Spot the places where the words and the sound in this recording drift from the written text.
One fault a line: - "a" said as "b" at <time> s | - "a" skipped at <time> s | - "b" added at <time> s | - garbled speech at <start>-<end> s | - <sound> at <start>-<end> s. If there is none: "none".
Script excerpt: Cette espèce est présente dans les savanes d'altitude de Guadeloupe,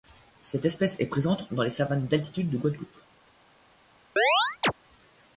- chirp at 4.2-4.7 s